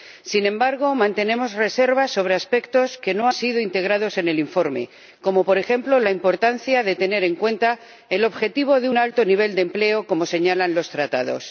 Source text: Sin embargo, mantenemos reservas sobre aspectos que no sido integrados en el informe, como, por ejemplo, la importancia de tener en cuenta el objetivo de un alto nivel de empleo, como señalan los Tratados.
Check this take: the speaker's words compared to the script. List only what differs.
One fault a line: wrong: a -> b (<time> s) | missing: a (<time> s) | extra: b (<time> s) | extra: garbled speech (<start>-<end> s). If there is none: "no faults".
no faults